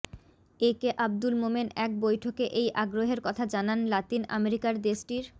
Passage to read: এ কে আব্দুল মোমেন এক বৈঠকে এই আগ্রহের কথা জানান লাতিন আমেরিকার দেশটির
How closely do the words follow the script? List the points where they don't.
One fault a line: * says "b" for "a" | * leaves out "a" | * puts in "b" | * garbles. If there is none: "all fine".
all fine